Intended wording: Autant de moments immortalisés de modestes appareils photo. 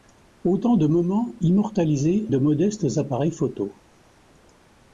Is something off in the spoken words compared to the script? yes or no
no